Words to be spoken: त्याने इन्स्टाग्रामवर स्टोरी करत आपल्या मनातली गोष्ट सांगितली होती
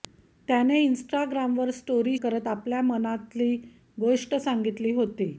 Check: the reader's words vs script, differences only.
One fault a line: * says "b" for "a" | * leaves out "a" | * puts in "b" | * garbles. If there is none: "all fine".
all fine